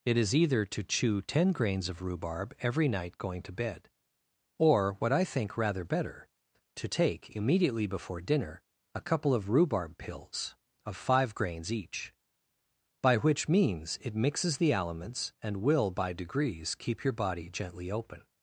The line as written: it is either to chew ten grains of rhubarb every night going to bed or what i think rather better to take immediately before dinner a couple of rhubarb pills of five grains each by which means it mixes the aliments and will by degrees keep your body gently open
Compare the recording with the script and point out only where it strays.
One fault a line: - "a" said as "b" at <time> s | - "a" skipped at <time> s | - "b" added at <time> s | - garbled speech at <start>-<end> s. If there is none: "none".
none